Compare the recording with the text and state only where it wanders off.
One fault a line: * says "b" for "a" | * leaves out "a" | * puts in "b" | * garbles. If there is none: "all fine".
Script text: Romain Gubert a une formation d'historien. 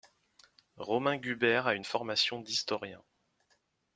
all fine